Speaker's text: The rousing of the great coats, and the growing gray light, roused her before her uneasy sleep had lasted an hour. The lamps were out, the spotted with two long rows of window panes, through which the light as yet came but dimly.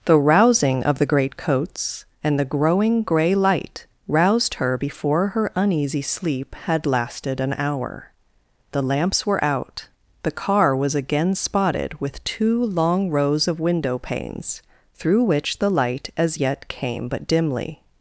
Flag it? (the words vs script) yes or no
yes